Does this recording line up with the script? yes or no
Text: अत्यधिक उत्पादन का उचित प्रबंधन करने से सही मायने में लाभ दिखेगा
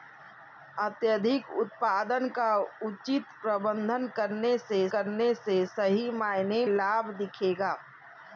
no